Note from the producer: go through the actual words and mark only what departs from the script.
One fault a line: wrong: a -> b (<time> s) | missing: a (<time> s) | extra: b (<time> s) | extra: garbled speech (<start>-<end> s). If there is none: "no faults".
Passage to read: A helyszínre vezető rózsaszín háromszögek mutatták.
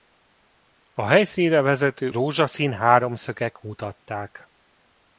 no faults